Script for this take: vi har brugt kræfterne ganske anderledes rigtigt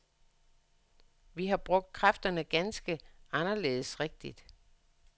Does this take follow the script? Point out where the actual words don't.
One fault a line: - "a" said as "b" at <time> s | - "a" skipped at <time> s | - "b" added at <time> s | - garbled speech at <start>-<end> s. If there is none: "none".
none